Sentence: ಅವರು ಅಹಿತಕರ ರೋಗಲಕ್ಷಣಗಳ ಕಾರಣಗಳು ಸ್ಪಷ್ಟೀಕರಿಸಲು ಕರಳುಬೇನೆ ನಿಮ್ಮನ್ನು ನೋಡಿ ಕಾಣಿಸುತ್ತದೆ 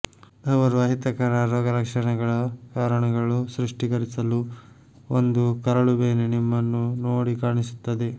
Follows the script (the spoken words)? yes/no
no